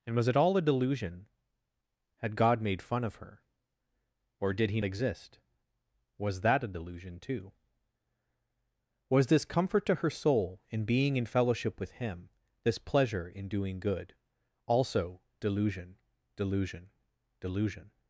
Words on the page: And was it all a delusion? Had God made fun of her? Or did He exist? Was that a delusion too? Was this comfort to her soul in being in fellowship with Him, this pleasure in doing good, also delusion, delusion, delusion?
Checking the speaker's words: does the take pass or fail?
pass